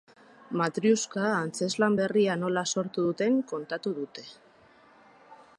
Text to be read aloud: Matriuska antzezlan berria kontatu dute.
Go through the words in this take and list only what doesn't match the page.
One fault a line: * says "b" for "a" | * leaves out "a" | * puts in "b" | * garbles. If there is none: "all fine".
* puts in "nola sortu duten"